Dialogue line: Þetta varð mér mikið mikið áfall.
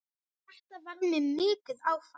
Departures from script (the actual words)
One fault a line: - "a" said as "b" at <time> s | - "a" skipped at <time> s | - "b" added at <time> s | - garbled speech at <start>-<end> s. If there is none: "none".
- "mikið" skipped at 1.9 s